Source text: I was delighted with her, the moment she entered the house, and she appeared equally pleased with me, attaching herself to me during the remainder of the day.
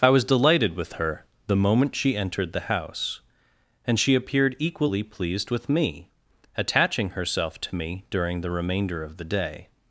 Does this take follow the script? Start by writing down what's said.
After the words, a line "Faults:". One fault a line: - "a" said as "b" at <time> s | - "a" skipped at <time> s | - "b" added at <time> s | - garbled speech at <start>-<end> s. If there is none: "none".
I was delighted with her, the moment she entered the house, and she appeared equally pleased with me, attaching herself to me during the remainder of the day.
Faults:
none